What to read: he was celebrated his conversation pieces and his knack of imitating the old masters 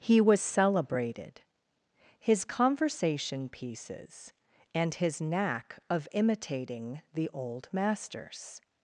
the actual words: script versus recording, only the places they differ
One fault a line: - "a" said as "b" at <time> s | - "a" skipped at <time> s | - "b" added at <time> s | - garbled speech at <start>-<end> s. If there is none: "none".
none